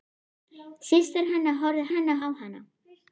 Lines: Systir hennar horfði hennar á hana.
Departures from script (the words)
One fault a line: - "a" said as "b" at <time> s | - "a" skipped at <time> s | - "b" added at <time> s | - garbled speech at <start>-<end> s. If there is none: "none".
none